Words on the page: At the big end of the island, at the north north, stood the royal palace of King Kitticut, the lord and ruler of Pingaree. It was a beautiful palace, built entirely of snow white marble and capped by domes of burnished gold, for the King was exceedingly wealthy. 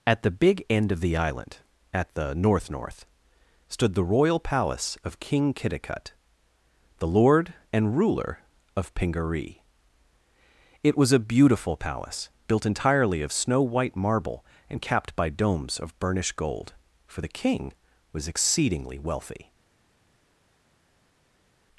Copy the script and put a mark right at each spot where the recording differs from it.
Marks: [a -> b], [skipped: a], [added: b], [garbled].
At the big end of the island, at the north north, stood the royal palace of King Kitticut, the lord and ruler of Pingaree. It was a beautiful palace, built entirely of snow white marble and capped by domes of burnished gold, for the King was exceedingly wealthy.